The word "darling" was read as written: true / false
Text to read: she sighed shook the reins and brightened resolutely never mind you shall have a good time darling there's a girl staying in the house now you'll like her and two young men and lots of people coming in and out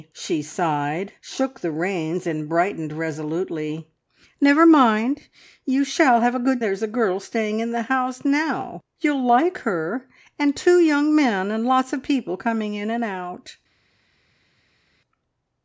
false